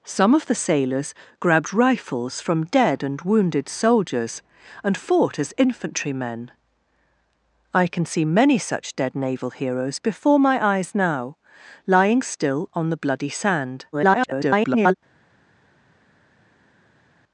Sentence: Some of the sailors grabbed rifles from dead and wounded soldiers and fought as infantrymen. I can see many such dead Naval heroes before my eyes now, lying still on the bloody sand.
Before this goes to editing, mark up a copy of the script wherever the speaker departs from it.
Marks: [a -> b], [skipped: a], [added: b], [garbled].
Some of the sailors grabbed rifles from dead and wounded soldiers and fought as infantrymen. I can see many such dead Naval heroes before my eyes now, lying still on the bloody sand. [garbled]